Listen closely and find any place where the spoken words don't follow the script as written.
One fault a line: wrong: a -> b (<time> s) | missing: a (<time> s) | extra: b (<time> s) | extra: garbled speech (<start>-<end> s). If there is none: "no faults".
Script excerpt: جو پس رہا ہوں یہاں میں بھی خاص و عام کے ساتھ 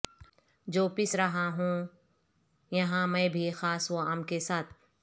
no faults